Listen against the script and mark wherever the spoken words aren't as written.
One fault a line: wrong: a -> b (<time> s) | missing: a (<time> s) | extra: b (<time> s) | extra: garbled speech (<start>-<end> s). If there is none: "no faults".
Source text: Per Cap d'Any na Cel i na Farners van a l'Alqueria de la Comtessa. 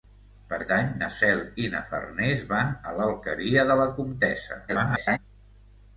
missing: Cap (0.6 s)
extra: garbled speech (4.7-5.2 s)